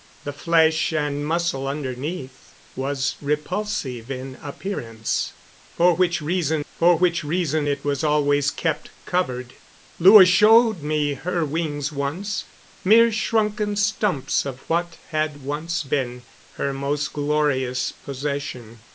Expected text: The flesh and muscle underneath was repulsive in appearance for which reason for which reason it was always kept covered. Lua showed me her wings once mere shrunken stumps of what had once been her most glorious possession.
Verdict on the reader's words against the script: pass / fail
pass